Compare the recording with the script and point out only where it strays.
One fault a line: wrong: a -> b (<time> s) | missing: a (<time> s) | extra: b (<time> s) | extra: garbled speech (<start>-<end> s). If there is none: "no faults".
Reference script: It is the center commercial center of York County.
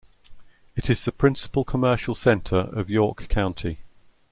wrong: center -> principal (1.1 s)